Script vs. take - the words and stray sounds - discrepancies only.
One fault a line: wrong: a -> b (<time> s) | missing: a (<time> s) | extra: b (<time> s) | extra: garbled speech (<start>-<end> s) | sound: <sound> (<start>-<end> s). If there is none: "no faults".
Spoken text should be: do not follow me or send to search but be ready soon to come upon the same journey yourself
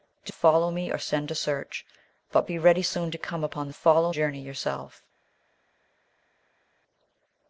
missing: not (0.3 s)
wrong: same -> follow (3.7 s)